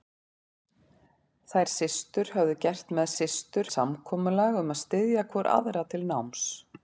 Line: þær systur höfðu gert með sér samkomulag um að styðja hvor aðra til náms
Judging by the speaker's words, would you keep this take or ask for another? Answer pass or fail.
fail